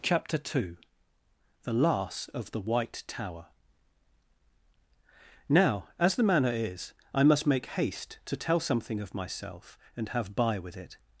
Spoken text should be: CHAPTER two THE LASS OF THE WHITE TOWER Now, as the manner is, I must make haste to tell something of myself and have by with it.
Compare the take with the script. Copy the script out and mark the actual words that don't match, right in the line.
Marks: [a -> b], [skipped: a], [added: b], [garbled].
CHAPTER two THE LASS OF THE WHITE TOWER Now, as the manner is, I must make haste to tell something of myself and have by with it.